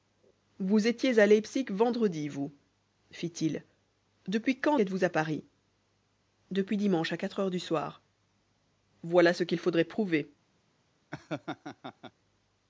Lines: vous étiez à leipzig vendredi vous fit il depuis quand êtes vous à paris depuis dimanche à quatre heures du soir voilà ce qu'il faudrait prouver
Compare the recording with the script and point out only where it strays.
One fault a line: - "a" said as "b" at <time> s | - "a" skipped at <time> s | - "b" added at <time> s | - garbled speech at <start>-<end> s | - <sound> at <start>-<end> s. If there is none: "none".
- laugh at 11.1-12.1 s